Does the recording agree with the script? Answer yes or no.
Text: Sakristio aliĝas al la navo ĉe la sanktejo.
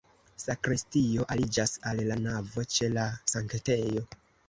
yes